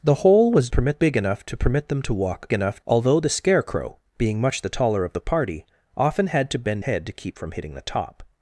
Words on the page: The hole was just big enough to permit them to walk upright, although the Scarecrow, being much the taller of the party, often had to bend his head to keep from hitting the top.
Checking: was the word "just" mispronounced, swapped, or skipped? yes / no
yes